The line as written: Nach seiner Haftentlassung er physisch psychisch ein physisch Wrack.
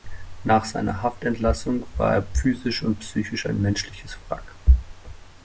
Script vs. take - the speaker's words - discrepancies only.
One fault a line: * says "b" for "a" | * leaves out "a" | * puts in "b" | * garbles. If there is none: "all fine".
* puts in "war"
* puts in "und"
* says "menschliches" for "physisch"